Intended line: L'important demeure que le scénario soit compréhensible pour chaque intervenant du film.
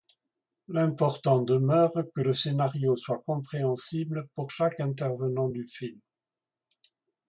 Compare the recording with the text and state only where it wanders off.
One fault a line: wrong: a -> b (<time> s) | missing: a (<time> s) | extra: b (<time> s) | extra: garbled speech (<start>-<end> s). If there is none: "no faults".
no faults